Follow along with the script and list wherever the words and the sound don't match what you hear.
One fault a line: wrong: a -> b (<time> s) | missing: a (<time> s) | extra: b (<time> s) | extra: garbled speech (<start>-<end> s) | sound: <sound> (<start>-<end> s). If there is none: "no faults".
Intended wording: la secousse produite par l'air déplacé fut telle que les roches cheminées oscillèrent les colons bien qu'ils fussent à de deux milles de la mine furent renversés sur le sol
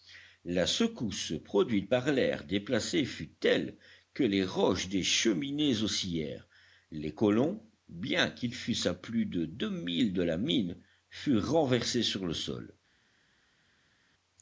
extra: des (4.9 s)
extra: plus (8.9 s)